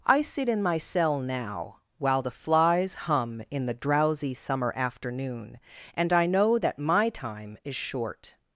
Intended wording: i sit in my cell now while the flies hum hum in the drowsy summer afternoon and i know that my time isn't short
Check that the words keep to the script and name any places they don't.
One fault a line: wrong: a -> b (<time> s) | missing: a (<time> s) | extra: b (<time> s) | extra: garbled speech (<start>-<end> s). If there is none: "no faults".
missing: hum (3.4 s)
wrong: isn't -> is (7.6 s)